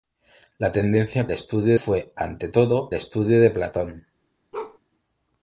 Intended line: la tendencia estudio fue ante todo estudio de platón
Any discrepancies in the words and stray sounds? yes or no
yes